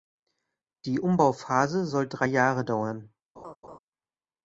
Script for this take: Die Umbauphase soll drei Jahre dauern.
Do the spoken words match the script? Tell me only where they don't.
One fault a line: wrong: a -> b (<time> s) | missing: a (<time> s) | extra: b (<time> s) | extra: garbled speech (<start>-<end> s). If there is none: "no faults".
no faults